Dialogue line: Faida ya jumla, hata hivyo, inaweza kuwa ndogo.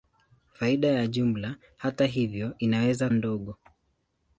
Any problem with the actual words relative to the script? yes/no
yes